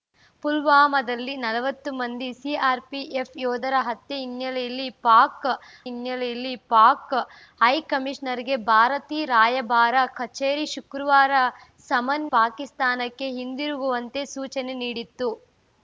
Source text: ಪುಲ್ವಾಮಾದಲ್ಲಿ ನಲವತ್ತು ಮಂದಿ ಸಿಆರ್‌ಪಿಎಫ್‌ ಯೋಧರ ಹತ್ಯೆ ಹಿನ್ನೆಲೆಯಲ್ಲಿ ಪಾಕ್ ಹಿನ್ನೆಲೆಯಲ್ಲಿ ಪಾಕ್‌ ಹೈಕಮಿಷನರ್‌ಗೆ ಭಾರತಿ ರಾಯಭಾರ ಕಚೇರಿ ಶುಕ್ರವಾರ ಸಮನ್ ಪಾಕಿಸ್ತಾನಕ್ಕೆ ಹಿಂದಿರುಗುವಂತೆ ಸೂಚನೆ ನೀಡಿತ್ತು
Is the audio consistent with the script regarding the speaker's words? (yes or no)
yes